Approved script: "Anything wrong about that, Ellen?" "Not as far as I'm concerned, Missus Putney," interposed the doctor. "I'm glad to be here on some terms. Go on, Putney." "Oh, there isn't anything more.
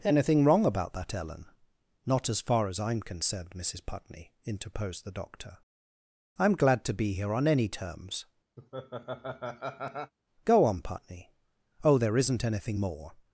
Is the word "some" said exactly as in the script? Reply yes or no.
no